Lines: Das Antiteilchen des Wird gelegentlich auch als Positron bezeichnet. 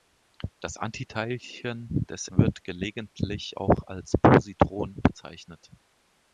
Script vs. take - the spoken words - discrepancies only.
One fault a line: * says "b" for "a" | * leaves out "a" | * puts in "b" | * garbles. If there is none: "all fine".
all fine